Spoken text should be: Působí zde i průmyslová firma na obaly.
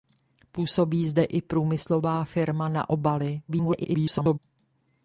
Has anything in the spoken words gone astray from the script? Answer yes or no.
yes